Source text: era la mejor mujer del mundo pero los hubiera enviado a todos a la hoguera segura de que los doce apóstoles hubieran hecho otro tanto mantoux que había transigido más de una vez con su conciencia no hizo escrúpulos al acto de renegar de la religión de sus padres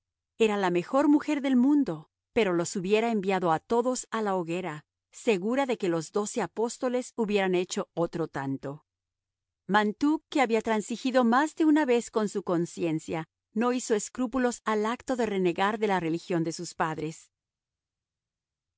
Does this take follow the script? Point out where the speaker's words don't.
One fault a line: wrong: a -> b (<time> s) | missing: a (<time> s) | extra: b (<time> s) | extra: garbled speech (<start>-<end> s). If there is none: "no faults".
no faults